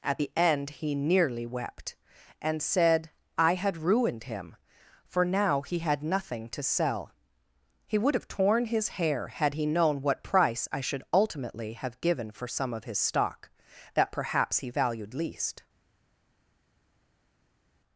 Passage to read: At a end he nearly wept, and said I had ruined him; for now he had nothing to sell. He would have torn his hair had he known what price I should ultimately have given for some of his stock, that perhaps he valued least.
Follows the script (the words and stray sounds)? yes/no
no